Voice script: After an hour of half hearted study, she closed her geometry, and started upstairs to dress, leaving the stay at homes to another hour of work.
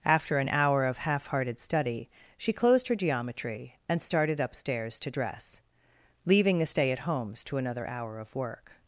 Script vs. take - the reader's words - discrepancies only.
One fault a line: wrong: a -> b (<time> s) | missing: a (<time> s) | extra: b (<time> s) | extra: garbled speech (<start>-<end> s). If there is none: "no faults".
no faults